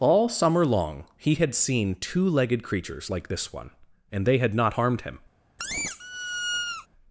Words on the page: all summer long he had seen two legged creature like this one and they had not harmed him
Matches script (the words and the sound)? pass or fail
fail